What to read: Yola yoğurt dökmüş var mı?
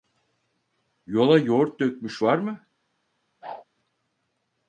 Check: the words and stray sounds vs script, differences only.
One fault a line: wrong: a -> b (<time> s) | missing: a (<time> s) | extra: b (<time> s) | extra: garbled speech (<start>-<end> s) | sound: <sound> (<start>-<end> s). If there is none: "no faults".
sound: whoosh (3.4-3.6 s)